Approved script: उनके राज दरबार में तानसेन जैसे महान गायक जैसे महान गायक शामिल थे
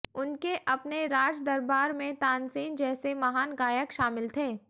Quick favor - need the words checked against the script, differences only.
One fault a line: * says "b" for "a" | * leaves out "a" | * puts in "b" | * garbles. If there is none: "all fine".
* puts in "अपने"
* leaves out "जैसे महान गायक"